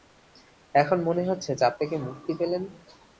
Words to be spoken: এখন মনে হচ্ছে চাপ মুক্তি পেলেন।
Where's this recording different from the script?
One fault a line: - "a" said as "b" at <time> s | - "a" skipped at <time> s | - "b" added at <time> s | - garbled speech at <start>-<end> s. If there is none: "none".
- "থেকে" added at 1.8 s